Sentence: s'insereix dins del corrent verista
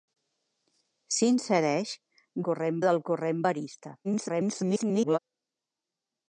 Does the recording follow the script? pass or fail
fail